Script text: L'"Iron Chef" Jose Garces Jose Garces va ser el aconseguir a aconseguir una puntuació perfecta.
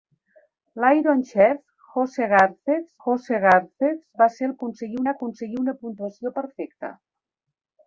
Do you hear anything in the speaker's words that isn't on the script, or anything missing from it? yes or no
no